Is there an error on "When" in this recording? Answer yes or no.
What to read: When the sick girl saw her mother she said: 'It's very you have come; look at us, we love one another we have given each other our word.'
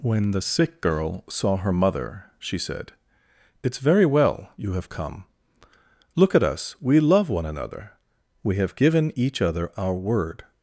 no